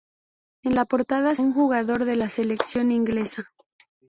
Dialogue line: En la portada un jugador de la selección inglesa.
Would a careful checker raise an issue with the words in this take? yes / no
no